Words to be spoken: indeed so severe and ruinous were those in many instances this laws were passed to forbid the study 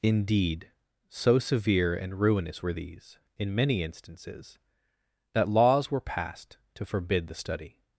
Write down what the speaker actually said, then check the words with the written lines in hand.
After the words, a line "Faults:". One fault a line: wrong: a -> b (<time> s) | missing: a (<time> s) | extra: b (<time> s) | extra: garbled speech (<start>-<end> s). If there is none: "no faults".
indeed so severe and ruinous were these in many instances that laws were passed to forbid the study
Faults:
wrong: those -> these (2.7 s)
wrong: this -> that (5.3 s)